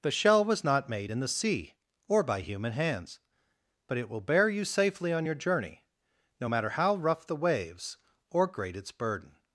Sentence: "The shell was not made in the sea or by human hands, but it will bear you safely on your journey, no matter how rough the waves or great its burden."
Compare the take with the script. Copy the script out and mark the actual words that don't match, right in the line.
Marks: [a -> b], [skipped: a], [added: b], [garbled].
"The shell was not made in the sea or by human hands, but it will bear you safely on your journey, no matter how rough the waves or great its burden."